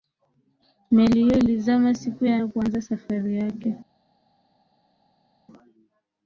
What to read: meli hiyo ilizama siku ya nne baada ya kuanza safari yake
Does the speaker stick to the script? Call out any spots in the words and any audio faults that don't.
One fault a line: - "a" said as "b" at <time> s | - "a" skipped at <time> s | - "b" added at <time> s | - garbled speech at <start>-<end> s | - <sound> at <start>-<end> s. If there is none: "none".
- "nne baada" skipped at 2.4 s